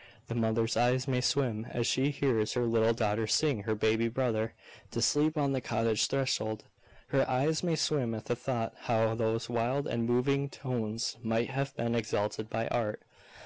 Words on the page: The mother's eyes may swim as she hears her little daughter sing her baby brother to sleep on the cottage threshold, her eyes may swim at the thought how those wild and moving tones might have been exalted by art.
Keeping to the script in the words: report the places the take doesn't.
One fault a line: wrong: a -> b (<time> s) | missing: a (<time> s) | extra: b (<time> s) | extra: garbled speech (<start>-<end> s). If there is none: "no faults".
no faults